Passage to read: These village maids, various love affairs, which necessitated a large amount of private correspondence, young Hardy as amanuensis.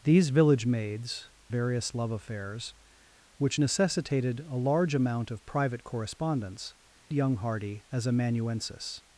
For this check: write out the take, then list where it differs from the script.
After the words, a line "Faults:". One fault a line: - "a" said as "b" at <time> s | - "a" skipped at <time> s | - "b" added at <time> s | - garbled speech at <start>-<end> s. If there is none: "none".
These village maids, various love affairs, which necessitated a large amount of private correspondence, young Hardy as amanuensis.
Faults:
none